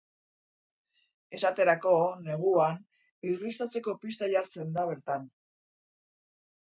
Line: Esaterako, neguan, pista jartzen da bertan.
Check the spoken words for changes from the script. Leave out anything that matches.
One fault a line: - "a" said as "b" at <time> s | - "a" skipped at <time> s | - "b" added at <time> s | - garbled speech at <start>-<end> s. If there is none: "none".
- "irristatzeko" added at 3.3 s